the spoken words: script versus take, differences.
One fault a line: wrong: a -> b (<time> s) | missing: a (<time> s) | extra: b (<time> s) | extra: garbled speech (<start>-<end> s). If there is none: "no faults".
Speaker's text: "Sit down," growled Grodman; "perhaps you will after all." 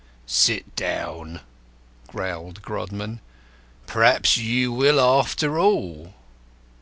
no faults